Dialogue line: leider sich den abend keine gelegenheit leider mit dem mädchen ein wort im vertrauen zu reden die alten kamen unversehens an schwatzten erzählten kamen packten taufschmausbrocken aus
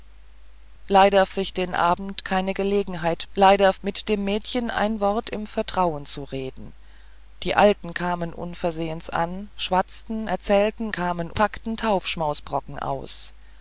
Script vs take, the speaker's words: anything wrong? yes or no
no